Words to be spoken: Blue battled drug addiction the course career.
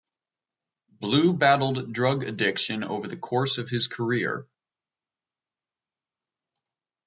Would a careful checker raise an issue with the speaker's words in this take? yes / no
yes